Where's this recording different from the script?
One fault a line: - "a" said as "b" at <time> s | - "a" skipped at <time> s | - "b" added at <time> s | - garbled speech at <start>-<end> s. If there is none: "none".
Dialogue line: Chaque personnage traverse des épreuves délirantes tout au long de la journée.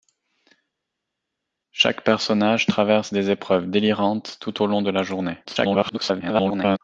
- garbled speech at 5.4-6.8 s